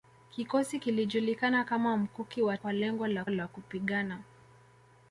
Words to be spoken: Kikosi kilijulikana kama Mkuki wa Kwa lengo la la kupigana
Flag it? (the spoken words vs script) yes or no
no